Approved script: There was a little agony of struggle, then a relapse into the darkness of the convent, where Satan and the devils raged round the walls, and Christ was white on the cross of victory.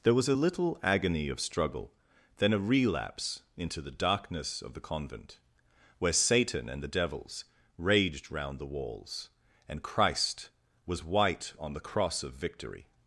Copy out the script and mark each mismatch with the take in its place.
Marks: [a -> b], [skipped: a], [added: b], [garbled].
There was a little agony of struggle, then a relapse into the darkness of the convent, where Satan and the devils raged round the walls, and Christ was white on the cross of victory.